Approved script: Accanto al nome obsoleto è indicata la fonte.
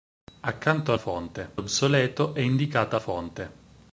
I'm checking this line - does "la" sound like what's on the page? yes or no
no